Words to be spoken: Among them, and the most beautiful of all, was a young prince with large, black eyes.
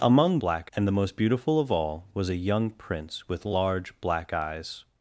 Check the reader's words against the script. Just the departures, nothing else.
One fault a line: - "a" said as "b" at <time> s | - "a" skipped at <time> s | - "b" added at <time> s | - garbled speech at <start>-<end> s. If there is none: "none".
- "them" said as "black" at 0.4 s